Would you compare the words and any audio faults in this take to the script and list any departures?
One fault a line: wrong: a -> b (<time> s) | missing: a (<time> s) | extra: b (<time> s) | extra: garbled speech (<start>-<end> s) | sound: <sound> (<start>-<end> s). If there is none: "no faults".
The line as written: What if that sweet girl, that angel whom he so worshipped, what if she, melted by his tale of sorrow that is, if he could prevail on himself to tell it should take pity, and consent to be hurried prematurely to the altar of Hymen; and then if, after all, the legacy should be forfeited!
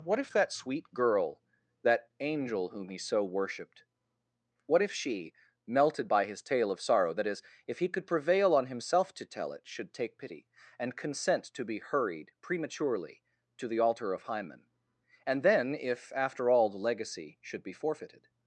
no faults